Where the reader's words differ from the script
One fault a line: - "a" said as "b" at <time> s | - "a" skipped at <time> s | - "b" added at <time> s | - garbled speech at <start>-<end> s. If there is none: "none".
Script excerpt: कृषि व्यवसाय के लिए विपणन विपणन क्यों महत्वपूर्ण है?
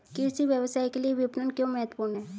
- "विपणन" skipped at 1.5 s